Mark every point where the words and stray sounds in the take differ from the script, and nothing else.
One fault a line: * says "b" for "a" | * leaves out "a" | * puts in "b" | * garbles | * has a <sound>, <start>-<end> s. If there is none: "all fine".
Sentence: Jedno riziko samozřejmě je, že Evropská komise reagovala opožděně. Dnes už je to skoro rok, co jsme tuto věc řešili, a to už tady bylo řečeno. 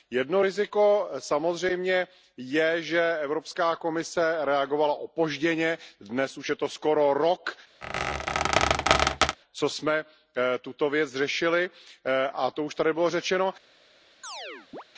* has a squeak, 7.8-9.4 s
* has a chirp, 14.2-14.8 s